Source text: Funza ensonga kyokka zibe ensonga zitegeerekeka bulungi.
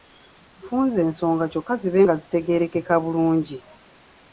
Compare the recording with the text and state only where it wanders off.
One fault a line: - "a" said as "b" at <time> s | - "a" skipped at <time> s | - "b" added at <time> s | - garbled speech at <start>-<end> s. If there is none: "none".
- "ensonga" said as "nga" at 2.0 s